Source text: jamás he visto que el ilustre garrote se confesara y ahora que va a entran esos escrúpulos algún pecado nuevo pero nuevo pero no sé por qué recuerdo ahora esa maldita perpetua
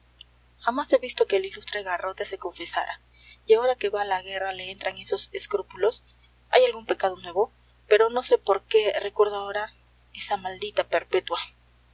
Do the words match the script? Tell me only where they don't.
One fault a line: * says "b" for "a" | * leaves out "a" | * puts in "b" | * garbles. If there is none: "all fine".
* puts in "la guerra le"
* puts in "hay"
* leaves out "nuevo pero"